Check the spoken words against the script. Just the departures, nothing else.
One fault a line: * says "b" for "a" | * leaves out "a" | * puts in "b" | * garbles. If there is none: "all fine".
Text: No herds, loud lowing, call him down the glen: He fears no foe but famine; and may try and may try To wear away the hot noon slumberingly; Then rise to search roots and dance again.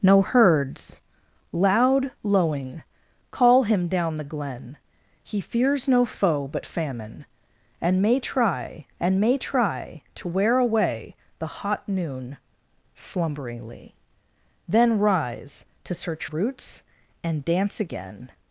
all fine